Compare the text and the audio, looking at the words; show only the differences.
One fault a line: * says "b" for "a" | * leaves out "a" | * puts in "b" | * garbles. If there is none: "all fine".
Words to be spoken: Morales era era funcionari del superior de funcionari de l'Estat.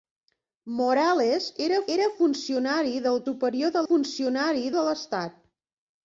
all fine